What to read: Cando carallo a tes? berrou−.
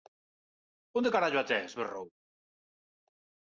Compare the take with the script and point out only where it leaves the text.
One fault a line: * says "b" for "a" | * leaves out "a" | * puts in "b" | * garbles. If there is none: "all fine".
* says "Onde" for "Cando"